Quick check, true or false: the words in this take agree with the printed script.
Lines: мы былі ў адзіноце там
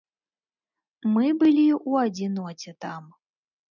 true